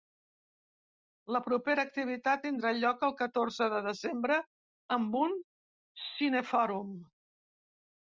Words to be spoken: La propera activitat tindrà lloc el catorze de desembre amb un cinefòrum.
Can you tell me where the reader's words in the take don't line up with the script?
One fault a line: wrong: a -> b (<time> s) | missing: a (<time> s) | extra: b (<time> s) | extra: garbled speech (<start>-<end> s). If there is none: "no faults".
no faults